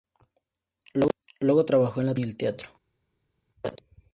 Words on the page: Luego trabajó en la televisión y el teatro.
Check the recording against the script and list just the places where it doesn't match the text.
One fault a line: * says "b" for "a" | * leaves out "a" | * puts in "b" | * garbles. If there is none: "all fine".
all fine